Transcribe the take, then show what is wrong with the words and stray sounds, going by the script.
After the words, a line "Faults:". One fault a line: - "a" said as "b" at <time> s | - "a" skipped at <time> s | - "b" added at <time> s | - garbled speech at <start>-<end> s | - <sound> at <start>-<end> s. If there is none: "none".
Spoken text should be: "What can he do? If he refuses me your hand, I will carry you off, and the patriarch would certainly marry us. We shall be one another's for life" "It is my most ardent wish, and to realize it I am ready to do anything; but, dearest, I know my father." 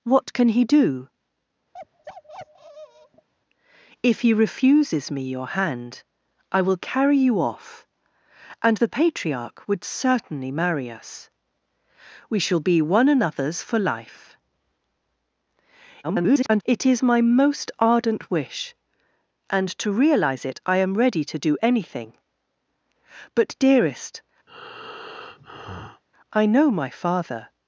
"What can he do? If he refuses me your hand, I will carry you off, and the patriarch would certainly marry us. We shall be one another's for life" [garbled] "It is my most ardent wish, and to realize it I am ready to do anything; but, dearest, I know my father."
Faults:
- bark at 1.7-3.3 s
- garbled speech at 16.0-16.6 s
- breath at 24.5-26.0 s